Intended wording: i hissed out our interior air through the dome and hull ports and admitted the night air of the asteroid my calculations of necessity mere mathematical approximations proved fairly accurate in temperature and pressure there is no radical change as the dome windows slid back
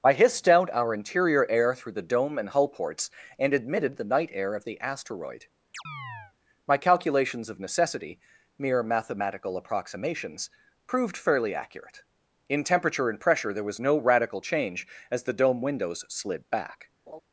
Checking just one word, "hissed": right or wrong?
right